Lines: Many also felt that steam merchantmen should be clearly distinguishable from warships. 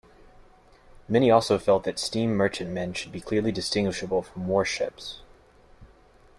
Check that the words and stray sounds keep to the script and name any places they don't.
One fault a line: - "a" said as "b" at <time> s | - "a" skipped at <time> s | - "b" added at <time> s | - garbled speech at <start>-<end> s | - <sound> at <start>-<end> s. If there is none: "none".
none